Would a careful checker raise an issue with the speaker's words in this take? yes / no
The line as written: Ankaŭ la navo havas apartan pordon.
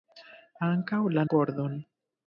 yes